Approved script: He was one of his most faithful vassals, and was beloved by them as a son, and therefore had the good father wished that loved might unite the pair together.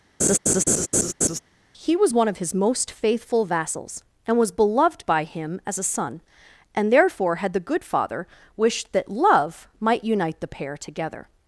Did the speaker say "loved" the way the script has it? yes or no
no